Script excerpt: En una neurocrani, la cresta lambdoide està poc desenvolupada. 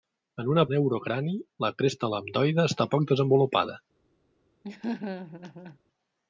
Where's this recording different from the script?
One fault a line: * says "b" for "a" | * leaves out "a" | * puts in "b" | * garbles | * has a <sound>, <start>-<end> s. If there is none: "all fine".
* has a laugh, 4.6-5.8 s